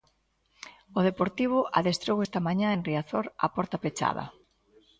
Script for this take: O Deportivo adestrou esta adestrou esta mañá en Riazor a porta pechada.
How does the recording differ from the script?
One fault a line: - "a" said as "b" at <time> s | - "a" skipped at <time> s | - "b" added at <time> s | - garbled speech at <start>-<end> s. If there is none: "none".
- "adestrou esta" skipped at 2.4 s